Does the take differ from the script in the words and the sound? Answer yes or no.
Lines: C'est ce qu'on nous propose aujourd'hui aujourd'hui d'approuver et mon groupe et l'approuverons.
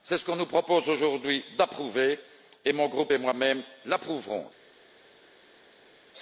yes